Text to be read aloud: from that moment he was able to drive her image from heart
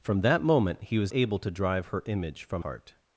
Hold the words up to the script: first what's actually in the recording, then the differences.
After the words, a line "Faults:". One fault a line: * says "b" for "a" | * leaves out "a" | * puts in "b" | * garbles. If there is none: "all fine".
from that moment he was able to drive her image from heart
Faults:
all fine